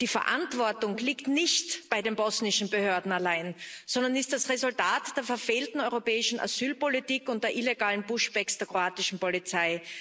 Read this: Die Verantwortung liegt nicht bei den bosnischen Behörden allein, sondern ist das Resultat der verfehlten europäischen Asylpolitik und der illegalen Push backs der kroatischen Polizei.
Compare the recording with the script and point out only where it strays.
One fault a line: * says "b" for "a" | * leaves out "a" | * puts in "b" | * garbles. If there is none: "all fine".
all fine